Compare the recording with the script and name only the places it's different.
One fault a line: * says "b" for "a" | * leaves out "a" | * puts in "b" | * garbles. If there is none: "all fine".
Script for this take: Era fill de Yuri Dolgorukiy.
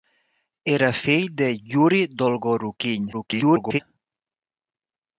* garbles